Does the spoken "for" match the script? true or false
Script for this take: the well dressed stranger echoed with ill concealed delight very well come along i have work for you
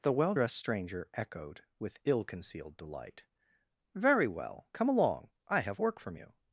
false